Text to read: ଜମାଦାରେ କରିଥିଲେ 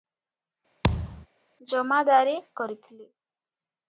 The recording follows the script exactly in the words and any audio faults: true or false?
false